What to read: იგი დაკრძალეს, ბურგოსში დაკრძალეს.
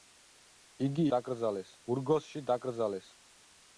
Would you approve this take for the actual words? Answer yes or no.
yes